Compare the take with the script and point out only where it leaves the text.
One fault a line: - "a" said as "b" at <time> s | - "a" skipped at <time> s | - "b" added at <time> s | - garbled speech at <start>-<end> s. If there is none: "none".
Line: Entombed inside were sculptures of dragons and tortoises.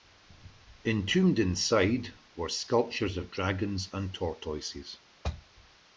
none